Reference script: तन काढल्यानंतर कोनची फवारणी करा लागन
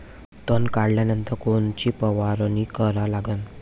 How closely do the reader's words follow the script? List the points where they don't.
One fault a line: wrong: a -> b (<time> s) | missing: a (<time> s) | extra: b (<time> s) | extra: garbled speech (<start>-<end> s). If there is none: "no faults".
no faults